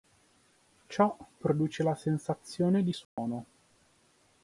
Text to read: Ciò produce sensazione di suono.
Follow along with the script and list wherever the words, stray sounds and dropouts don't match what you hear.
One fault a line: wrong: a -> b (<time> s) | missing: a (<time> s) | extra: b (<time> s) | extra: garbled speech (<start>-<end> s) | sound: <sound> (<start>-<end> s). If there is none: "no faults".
extra: la (1.8 s)
sound: dropout (3.0-3.2 s)